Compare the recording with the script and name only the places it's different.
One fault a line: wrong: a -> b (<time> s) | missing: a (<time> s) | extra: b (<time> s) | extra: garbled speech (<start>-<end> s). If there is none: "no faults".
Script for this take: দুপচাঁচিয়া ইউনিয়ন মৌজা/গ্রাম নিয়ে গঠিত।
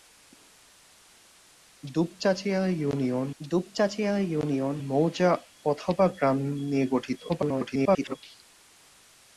extra: দুপচাঁচিয়া ইউনিয়ন (3.4 s)
extra: garbled speech (7.3-8.2 s)